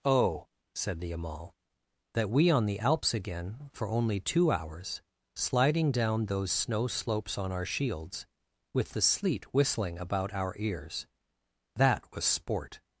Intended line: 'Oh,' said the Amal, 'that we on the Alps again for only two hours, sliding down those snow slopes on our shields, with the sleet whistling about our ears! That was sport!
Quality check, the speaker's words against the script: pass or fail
pass